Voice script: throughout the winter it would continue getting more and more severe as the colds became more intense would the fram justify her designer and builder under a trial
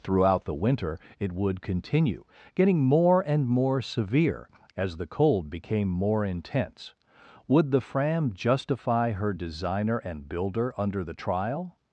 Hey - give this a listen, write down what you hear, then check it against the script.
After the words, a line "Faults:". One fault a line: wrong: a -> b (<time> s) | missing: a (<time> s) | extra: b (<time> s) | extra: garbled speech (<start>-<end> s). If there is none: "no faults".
throughout the winter it would continue getting more and more severe as the cold became more intense would the fram justify her designer and builder under the trial
Faults:
wrong: colds -> cold (5.1 s)
wrong: a -> the (11.0 s)